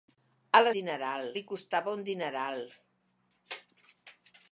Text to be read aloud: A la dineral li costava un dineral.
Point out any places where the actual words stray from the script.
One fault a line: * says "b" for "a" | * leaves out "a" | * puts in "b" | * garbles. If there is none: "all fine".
all fine